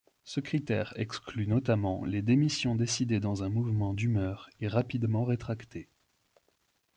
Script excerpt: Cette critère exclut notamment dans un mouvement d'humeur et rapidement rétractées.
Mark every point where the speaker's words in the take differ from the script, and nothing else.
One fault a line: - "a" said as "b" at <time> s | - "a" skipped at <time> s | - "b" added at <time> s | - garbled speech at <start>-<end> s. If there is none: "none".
- "Cette" said as "Ce" at 0.2 s
- "les démissions décidées" added at 2.1 s